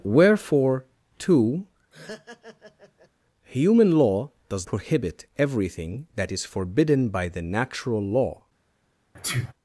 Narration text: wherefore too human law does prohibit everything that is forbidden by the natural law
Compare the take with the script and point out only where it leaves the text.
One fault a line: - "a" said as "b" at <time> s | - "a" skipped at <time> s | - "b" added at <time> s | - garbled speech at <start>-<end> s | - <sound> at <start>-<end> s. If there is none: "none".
- laugh at 1.9-3.1 s
- sneeze at 9.1-9.5 s